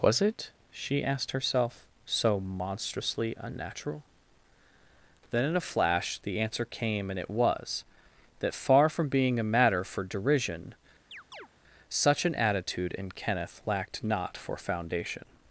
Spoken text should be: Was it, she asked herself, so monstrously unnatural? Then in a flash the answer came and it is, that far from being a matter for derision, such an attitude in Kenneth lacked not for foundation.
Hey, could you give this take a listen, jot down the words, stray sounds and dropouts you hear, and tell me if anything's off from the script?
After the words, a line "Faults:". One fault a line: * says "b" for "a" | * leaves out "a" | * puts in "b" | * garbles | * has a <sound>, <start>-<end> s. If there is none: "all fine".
Was it, she asked herself, so monstrously unnatural? Then in a flash the answer came and it was, that far from being a matter for derision, such an attitude in Kenneth lacked not for foundation.
Faults:
* says "was" for "is"
* has a chirp, 11.1-11.5 s